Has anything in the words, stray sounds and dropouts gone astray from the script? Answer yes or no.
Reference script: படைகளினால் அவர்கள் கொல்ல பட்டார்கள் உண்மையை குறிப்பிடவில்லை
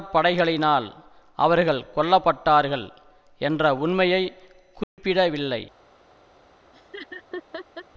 yes